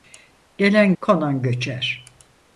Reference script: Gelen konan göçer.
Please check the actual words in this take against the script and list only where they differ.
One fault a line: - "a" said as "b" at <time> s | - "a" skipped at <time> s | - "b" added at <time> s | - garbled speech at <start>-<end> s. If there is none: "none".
none